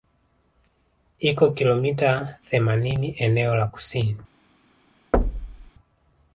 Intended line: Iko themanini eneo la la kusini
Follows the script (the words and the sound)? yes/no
no